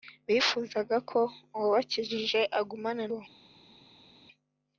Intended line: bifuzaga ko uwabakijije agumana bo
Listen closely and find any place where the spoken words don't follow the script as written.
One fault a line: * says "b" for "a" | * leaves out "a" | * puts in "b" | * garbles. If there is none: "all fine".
all fine